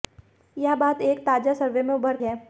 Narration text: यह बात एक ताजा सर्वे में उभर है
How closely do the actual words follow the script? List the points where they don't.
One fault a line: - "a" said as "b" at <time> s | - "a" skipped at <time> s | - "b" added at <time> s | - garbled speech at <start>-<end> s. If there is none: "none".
none